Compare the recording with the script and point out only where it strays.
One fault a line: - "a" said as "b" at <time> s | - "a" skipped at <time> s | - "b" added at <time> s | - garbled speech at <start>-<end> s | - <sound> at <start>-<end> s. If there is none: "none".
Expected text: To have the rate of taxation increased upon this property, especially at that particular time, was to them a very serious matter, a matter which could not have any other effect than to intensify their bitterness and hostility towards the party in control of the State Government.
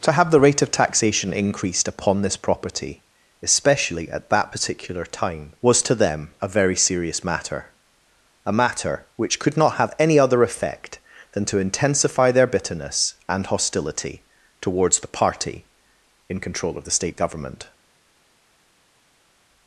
none